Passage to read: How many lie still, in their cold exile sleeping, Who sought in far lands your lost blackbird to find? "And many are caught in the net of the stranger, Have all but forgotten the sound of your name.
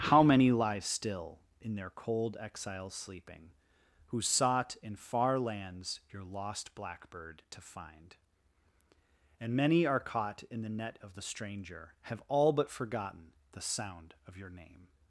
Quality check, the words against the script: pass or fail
pass